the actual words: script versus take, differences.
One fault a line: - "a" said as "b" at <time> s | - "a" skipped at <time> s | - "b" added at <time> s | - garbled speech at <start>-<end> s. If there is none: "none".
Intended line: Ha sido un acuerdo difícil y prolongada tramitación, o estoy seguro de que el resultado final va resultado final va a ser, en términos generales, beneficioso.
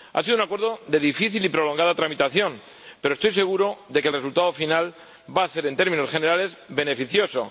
- "de" added at 0.9 s
- "o" said as "pero" at 3.0 s
- "resultado final va" skipped at 5.4 s